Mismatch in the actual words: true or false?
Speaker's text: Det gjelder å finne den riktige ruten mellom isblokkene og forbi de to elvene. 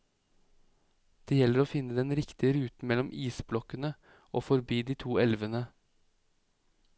false